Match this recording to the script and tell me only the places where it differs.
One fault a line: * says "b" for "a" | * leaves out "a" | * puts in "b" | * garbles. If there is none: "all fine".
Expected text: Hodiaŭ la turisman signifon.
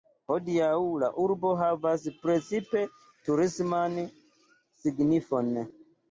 * puts in "urbo havas precipe"